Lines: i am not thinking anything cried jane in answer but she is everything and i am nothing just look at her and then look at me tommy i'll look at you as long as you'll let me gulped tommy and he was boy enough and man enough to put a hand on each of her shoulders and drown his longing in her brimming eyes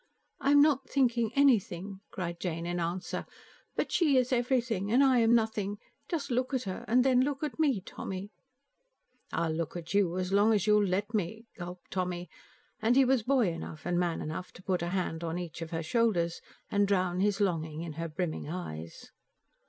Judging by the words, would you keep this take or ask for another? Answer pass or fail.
pass